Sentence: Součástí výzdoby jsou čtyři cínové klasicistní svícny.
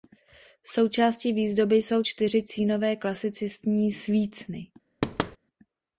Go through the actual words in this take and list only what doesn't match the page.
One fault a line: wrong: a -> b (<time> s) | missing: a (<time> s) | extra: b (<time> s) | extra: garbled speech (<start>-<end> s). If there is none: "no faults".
no faults